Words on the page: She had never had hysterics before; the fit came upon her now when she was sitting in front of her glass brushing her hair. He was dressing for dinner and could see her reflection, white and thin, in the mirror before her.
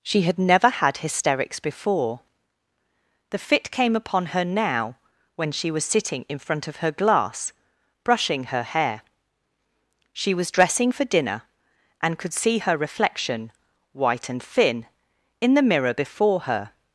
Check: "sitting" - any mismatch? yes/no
no